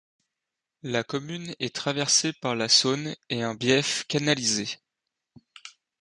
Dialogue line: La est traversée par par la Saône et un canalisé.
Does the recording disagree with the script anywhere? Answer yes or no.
yes